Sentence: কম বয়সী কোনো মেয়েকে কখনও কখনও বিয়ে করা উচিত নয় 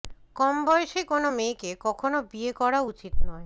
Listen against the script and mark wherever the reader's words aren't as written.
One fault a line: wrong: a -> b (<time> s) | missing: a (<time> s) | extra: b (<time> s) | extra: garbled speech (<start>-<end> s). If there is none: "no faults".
missing: কখনও (2.2 s)